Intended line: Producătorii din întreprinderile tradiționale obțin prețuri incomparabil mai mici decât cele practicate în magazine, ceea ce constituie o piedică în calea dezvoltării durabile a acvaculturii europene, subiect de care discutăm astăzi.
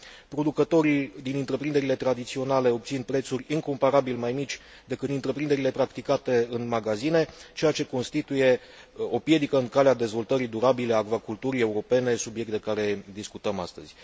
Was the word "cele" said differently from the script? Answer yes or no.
yes